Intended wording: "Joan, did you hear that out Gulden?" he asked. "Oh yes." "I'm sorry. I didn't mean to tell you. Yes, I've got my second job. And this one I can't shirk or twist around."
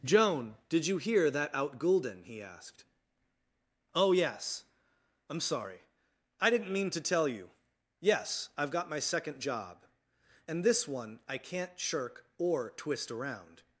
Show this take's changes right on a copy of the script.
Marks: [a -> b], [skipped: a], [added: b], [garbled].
"Joan, did you hear that out Gulden?" he asked. "Oh yes." "I'm sorry. I didn't mean to tell you. Yes, I've got my second job. And this one I can't shirk or twist around."